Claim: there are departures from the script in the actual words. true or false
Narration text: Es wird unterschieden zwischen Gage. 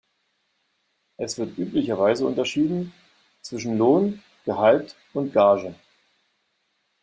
true